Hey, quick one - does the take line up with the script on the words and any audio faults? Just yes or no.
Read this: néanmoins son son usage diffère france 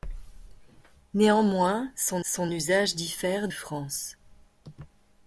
yes